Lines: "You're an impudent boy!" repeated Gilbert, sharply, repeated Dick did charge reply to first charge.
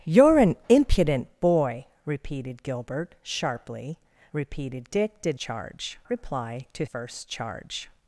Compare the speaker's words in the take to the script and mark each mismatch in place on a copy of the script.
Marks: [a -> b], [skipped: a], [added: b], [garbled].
"You're an impudent boy!" repeated Gilbert, sharply, repeated Dick did charge reply to first charge.